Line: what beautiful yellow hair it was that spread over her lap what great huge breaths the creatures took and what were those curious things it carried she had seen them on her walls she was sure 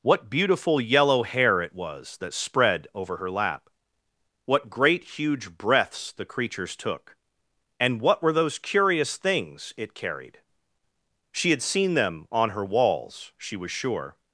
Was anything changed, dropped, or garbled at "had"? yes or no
no